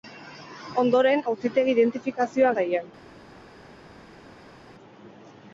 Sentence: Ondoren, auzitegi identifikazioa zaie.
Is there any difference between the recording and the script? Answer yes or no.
no